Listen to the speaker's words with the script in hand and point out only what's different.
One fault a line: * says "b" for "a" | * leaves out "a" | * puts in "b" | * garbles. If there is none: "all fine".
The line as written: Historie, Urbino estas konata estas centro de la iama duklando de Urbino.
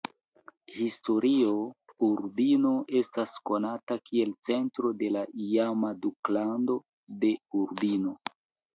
* says "kiel" for "estas"